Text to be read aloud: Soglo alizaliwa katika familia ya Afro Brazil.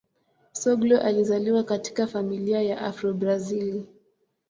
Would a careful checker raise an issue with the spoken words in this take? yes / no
no